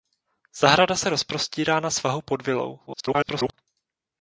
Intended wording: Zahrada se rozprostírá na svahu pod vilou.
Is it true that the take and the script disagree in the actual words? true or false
true